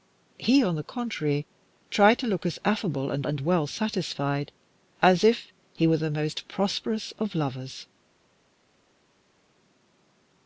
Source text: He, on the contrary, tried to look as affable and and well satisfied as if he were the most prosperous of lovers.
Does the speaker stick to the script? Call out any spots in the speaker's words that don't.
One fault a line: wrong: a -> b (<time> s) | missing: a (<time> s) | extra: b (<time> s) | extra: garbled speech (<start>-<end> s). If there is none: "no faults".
no faults